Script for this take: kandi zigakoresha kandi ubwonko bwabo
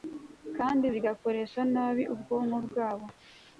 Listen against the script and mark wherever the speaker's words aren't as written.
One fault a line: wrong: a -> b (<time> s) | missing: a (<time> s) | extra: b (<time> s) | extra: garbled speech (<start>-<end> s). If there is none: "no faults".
wrong: kandi -> nabi (1.7 s)